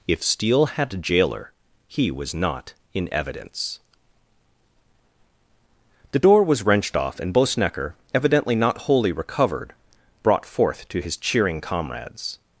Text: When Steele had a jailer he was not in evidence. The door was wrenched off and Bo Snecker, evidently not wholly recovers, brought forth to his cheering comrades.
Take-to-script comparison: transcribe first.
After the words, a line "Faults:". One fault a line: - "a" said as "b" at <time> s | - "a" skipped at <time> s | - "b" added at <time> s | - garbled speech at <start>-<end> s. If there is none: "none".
If Steele had a jailer he was not in evidence. The door was wrenched off and Bo Snecker, evidently not wholly recovered, brought forth to his cheering comrades.
Faults:
- "When" said as "If" at 0.1 s
- "recovers" said as "recovered" at 9.1 s